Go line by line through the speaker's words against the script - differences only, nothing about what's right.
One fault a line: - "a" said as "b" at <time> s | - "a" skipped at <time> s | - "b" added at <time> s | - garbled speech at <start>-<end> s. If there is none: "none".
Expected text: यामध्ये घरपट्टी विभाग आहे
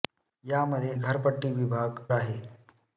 none